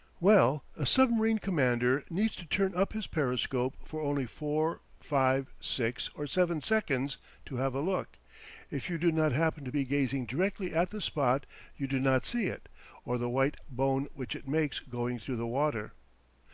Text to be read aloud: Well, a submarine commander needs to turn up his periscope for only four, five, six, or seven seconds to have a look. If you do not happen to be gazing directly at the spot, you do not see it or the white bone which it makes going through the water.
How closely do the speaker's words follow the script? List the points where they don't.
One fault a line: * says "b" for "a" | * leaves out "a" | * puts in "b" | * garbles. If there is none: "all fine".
all fine